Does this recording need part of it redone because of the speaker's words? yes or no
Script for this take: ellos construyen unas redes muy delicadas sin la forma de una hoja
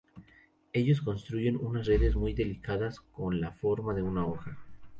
yes